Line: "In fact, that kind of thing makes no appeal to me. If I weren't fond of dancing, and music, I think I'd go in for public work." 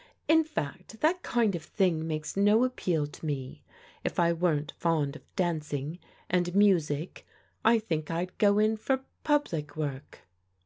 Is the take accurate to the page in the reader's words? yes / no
yes